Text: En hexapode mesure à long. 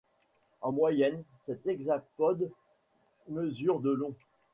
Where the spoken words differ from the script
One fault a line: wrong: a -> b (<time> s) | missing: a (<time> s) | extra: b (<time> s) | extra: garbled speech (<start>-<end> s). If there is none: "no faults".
extra: moyenne cet (0.7 s)
wrong: à -> de (3.8 s)